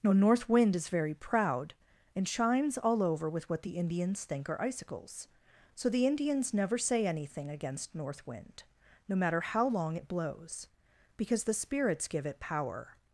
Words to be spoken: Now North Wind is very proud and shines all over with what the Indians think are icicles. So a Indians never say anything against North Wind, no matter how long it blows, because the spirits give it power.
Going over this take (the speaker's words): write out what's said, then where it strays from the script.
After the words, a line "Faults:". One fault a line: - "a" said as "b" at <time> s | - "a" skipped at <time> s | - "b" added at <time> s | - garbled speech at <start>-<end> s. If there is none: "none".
Now North Wind is very proud and shines all over with what the Indians think are icicles. So the Indians never say anything against North Wind, no matter how long it blows, because the spirits give it power.
Faults:
- "a" said as "the" at 5.9 s